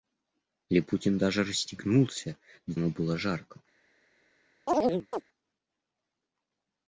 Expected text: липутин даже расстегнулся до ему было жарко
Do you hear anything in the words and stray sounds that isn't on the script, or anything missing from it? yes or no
yes